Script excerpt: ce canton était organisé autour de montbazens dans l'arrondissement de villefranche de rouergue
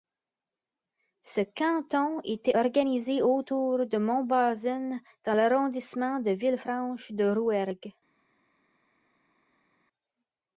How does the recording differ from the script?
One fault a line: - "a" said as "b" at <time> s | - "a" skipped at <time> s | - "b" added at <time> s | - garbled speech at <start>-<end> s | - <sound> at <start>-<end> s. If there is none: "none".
none